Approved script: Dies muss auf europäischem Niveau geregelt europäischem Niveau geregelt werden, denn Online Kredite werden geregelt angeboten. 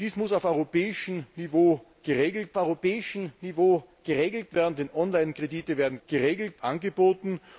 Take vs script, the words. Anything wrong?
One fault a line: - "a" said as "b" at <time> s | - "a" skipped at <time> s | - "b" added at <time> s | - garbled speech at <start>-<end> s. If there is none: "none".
none